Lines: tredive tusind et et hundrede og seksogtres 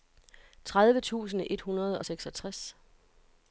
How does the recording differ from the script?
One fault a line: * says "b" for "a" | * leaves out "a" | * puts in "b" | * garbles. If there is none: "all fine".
* leaves out "et"